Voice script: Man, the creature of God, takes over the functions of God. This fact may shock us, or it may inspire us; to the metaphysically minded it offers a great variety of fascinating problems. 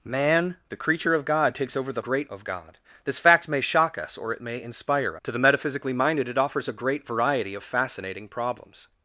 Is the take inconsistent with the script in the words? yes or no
yes